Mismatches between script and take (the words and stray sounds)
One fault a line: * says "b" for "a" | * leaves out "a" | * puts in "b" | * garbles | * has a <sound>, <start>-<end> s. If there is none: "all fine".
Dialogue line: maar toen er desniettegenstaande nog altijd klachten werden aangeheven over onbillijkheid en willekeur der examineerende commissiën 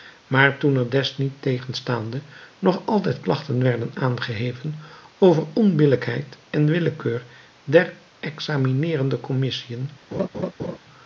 * has a laugh, 10.1-10.8 s